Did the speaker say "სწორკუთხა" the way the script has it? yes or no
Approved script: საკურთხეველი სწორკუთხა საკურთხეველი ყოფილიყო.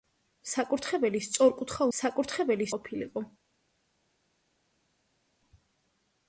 yes